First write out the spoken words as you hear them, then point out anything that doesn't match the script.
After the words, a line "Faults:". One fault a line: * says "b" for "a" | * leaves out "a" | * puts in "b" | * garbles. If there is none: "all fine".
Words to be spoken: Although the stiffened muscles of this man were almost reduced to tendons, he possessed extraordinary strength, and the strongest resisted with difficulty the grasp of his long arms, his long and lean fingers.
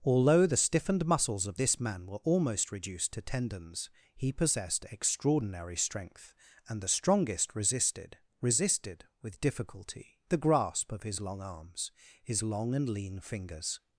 Although the stiffened muscles of this man were almost reduced to tendons, he possessed extraordinary strength, and the strongest resisted resisted with difficulty the grasp of his long arms, his long and lean fingers.
Faults:
* puts in "resisted"